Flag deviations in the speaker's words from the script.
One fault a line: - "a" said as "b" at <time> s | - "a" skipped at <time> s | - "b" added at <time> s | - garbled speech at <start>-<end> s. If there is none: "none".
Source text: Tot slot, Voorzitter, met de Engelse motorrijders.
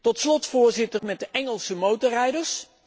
none